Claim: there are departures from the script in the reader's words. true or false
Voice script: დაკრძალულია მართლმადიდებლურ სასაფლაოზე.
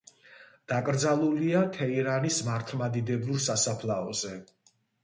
true